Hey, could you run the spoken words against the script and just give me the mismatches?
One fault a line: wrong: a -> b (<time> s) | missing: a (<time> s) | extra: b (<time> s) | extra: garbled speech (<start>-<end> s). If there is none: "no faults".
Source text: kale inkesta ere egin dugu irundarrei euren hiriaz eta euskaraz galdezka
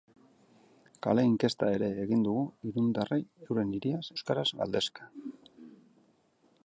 missing: eta (4.0 s)